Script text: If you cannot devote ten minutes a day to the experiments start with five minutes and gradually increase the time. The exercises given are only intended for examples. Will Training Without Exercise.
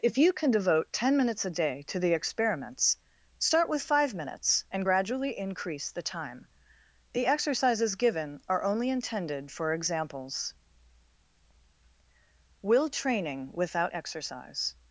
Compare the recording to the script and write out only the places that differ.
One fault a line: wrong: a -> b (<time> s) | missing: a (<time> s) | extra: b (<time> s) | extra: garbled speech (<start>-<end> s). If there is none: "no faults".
wrong: cannot -> can (0.3 s)